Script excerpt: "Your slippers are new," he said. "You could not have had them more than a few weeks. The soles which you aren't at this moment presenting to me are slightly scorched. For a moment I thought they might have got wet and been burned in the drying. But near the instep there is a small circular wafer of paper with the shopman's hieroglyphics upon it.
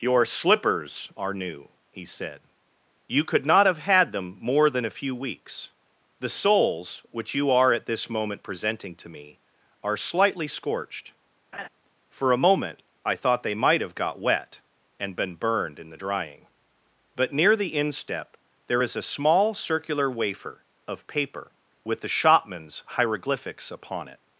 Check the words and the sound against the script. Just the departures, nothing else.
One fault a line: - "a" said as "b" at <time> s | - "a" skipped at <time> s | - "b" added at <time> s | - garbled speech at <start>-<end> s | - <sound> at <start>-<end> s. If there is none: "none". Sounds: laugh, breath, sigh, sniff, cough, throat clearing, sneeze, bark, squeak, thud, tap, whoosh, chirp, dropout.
- "aren't" said as "are" at 7.5 s
- laugh at 11.5-11.7 s